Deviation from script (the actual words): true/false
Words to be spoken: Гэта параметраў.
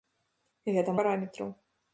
false